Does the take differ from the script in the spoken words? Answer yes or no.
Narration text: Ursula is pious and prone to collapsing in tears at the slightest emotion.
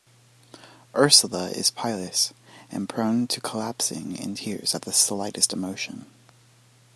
no